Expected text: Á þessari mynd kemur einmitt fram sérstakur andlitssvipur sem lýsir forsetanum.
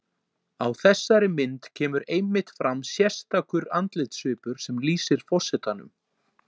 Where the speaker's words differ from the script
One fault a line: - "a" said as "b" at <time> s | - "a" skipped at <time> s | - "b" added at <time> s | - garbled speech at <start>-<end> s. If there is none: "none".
none